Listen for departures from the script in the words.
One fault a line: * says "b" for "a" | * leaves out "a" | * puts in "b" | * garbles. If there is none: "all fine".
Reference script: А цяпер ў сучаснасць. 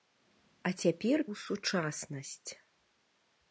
all fine